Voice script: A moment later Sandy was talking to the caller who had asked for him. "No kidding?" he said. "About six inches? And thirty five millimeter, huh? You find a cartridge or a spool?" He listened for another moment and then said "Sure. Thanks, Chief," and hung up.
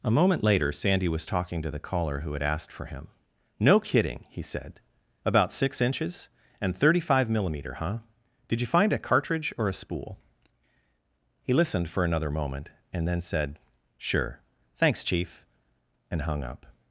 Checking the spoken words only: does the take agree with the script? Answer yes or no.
no